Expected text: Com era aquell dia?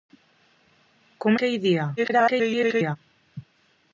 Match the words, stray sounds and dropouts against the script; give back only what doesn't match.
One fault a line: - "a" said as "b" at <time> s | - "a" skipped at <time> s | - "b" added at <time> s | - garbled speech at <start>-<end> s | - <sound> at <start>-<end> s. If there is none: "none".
- "era" skipped at 1.4 s
- garbled speech at 2.0-3.0 s